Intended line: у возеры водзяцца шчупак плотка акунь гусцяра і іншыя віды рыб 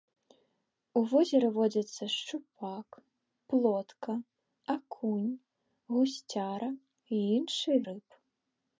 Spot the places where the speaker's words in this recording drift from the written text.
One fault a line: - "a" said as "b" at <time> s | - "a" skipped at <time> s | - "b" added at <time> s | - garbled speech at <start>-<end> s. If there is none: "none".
- "віды" skipped at 7.8 s